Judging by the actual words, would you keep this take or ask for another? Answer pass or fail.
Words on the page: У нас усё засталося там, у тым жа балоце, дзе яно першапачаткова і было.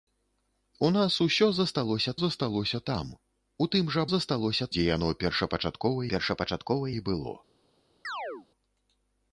fail